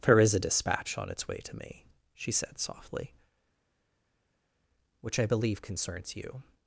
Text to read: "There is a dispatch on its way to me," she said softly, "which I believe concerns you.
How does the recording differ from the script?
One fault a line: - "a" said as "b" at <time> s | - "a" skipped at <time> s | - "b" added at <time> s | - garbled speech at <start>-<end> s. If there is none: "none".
none